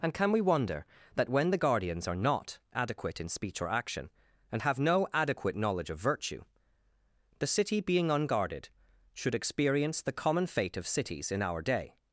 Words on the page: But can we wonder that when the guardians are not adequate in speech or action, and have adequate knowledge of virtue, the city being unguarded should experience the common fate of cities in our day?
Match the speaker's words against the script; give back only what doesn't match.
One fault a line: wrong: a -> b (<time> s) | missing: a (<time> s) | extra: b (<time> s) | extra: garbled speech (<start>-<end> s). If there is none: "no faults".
wrong: But -> And (0.0 s)
extra: no (4.8 s)